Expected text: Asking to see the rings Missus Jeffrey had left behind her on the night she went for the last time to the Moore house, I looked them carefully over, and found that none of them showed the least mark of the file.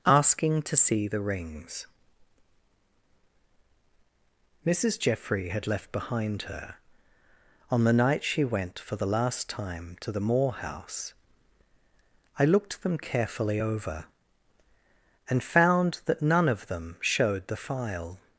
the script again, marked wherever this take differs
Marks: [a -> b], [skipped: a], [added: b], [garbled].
Asking to see the rings Missus Jeffrey had left behind her on the night she went for the last time to the Moore house, I looked them carefully over, and found that none of them showed the [skipped: least mark of the] file.